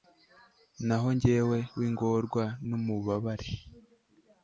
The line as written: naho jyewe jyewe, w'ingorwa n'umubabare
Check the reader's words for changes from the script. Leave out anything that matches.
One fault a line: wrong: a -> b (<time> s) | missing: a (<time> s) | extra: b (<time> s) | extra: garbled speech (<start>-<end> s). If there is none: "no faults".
missing: jyewe (1.6 s)